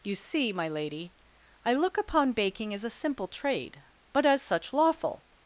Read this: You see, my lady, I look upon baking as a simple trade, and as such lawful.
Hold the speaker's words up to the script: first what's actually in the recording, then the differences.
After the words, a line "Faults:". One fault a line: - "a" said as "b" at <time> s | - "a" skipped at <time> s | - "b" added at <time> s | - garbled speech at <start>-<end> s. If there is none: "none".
You see, my lady, I look upon baking as a simple trade, but as such lawful.
Faults:
- "and" said as "but" at 4.1 s